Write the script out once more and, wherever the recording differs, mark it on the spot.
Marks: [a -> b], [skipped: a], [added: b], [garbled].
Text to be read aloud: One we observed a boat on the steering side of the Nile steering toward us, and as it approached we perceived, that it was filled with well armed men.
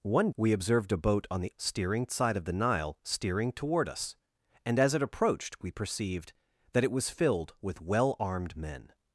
One we observed a boat on the steering side of the Nile steering toward us, and as it approached we perceived, that it was filled with well armed men.